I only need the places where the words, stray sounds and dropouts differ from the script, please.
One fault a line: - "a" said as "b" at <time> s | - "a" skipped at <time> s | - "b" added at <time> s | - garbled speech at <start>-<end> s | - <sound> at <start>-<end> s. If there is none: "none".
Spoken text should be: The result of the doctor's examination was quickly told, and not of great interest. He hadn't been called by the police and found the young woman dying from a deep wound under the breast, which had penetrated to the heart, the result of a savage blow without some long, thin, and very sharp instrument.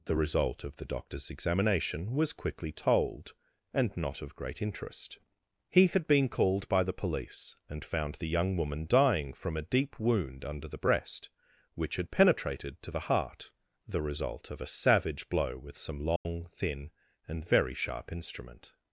- "hadn't" said as "had" at 5.9 s
- "without" said as "with" at 15.6 s
- dropout at 16.2-16.3 s